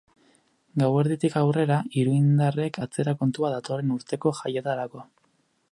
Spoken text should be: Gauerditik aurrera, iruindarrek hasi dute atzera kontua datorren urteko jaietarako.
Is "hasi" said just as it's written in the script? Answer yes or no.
no